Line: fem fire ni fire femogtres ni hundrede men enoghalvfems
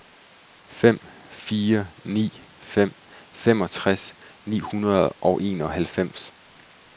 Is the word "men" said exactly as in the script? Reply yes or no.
no